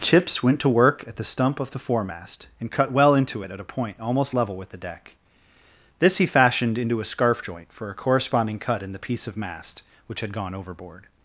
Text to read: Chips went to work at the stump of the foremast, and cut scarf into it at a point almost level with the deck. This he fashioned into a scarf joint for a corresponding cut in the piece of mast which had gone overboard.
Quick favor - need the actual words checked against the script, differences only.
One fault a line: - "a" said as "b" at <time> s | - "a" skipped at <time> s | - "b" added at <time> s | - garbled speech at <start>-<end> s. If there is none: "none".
- "scarf" said as "well" at 2.9 s